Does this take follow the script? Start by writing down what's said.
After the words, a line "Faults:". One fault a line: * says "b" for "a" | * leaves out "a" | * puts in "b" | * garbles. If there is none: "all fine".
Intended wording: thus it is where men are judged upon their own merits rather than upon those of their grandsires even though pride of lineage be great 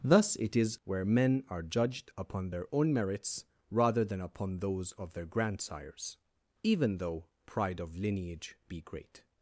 thus it is where men are judged upon their own merits rather than upon those of their grandsires even though pride of lineage be great
Faults:
all fine